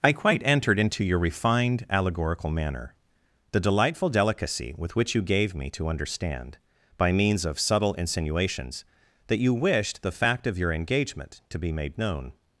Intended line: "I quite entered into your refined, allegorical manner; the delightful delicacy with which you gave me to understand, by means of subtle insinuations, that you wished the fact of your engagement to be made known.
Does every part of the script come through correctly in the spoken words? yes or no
yes